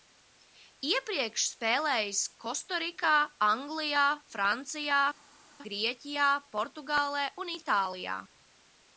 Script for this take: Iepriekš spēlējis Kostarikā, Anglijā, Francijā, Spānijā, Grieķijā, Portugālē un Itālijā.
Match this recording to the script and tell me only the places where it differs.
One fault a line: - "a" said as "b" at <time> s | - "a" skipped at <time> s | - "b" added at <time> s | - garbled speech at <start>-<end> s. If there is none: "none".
- "Spānijā" skipped at 5.0 s